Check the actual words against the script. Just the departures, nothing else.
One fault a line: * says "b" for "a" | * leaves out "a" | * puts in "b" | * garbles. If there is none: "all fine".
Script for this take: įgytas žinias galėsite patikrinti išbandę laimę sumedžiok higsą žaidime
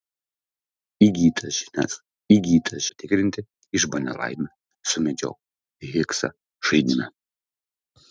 * says "įgytas" for "galėsite"